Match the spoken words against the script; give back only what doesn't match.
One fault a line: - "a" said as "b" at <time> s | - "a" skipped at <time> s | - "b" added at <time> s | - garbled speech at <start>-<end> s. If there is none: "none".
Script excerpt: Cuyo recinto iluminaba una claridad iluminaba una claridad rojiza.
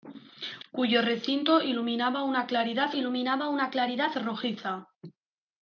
none